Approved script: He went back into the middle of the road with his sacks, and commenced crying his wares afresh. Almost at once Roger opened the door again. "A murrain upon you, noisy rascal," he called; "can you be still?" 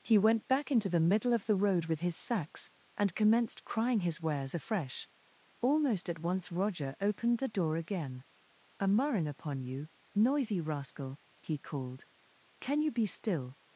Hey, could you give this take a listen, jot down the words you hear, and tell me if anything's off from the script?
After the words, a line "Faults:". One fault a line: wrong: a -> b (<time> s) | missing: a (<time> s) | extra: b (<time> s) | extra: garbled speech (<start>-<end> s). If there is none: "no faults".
He went back into the middle of the road with his sacks, and commenced crying his wares afresh. Almost at once Roger opened the door again. "A murrain upon you, noisy rascal," he called; "can you be still?"
Faults:
no faults